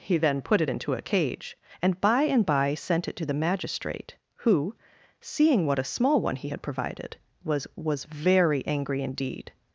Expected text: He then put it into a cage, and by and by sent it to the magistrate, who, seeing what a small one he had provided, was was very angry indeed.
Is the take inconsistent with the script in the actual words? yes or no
no